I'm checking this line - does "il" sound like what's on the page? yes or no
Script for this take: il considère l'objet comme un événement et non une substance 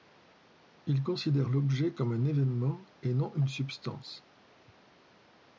yes